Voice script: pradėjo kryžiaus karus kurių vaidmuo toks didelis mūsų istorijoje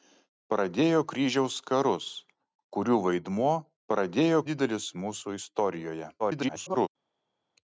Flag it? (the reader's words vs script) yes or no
yes